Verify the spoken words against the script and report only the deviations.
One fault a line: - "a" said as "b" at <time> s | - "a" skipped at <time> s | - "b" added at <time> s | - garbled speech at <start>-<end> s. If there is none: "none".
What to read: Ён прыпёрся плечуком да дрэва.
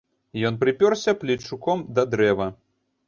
none